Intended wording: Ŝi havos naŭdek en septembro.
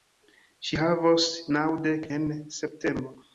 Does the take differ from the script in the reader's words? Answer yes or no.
no